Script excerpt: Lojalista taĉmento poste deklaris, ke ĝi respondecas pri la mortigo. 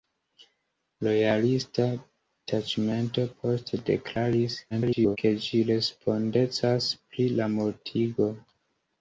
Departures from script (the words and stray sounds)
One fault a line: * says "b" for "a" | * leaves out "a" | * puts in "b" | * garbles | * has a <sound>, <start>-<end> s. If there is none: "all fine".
* garbles